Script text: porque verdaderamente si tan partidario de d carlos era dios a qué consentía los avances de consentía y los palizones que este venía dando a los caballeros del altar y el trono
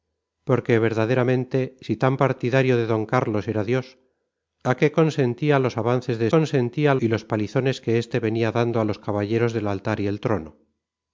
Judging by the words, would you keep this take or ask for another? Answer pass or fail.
pass